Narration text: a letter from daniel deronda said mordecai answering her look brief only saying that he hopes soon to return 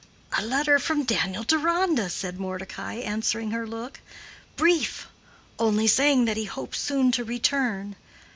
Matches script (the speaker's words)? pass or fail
pass